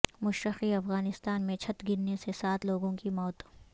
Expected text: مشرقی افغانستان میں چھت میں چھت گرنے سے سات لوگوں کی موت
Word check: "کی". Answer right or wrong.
right